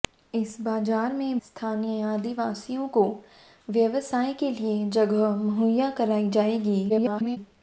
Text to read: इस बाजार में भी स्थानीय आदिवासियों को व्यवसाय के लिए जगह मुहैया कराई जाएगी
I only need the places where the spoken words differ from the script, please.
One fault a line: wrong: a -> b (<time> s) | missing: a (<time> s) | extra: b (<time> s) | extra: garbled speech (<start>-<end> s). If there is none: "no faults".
missing: भी (1.4 s)
extra: garbled speech (6.9-7.4 s)